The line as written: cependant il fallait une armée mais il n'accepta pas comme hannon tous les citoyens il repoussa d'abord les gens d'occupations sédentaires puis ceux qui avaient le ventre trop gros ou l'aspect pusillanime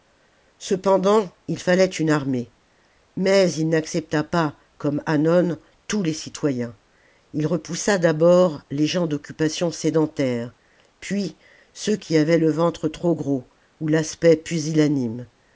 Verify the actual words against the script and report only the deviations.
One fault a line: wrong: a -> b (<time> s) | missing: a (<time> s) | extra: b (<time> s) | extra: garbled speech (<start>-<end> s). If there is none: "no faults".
no faults